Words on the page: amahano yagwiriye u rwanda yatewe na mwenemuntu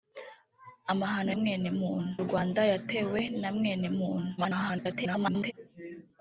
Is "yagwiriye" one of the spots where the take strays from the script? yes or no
yes